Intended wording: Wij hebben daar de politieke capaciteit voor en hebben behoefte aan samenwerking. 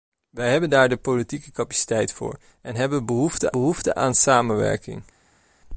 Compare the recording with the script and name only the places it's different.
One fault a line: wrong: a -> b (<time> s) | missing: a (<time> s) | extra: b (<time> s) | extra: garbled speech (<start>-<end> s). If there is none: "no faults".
extra: behoefte (3.5 s)